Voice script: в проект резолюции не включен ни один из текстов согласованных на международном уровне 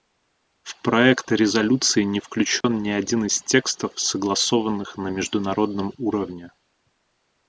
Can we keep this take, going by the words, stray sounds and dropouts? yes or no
no